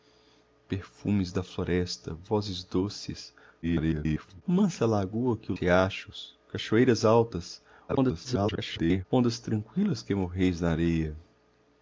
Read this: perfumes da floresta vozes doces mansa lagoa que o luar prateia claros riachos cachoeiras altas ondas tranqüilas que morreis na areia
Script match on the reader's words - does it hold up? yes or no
no